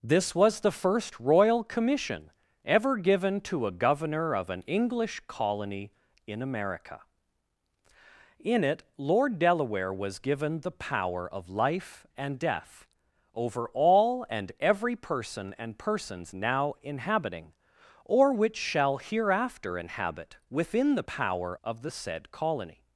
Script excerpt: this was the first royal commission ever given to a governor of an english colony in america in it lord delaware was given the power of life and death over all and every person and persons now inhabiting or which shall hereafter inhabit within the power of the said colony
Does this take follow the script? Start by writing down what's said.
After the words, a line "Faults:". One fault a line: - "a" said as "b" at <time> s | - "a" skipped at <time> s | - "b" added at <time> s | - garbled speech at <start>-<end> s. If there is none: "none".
this was the first royal commission ever given to a governor of an english colony in america in it lord delaware was given the power of life and death over all and every person and persons now inhabiting or which shall hereafter inhabit within the power of the said colony
Faults:
none